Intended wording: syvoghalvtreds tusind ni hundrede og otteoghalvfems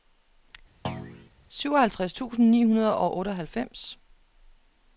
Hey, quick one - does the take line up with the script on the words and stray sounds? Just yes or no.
no